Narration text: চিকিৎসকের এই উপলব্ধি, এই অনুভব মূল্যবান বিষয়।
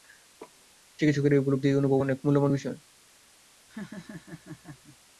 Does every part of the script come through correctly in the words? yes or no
no